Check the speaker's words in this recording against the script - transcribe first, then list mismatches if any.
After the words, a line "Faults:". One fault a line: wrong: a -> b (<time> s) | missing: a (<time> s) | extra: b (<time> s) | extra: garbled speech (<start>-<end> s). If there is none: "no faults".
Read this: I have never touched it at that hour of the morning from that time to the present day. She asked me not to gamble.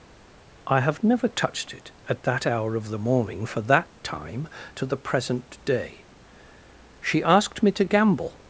I have never touched it at that hour of the morning for that time to the present day. She asked me to gamble.
Faults:
wrong: from -> for (3.4 s)
missing: not (7.7 s)